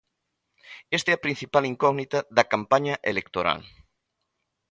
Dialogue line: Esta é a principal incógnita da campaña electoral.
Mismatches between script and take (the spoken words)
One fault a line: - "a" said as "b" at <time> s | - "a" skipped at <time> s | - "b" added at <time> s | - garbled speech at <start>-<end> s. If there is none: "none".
none